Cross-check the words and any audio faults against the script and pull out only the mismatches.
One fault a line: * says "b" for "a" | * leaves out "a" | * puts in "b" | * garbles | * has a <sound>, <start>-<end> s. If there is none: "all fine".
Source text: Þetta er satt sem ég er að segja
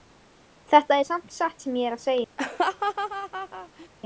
* puts in "samt"
* has a laugh, 2.4-3.9 s